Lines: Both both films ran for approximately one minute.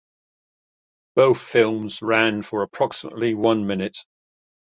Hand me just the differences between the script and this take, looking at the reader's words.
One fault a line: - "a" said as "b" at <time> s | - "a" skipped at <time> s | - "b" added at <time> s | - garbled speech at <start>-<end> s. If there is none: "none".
- "both" skipped at 1.4 s